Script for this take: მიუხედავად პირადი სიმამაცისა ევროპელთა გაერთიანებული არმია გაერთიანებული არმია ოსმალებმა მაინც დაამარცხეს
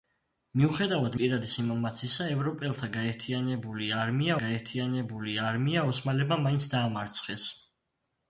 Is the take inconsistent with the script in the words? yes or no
no